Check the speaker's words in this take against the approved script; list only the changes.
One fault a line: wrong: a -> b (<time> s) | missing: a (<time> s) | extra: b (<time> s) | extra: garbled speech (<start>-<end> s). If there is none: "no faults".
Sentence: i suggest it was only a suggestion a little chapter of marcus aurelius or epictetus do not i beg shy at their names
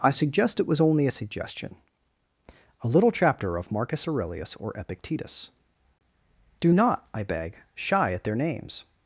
no faults